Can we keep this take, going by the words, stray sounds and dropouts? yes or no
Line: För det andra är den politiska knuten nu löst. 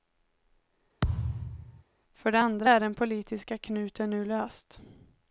no